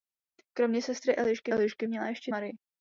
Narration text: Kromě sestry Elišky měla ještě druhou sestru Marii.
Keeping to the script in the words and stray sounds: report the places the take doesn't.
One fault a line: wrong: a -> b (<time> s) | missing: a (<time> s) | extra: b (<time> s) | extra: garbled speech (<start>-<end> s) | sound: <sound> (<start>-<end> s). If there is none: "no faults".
extra: Elišky (1.5 s)
missing: druhou sestru (2.3 s)